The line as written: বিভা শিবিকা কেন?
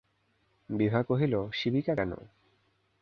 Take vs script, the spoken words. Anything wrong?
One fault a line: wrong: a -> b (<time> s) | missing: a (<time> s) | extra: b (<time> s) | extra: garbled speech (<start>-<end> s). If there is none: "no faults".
extra: কহিল (1.0 s)